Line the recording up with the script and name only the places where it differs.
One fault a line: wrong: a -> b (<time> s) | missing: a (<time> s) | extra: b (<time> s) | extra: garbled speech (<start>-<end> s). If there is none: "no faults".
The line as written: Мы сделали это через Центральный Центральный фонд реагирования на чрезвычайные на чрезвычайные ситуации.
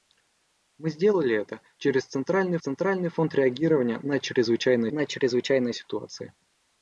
no faults